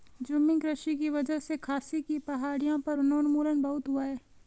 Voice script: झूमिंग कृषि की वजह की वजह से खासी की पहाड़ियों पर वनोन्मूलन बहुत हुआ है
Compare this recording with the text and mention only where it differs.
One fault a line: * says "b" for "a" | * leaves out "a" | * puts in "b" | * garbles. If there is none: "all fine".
* leaves out "की वजह"